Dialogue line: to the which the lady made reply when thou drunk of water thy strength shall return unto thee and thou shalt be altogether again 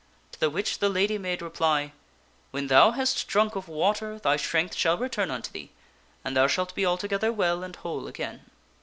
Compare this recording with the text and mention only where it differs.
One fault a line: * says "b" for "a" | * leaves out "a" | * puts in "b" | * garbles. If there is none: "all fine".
* puts in "hast"
* puts in "well and whole"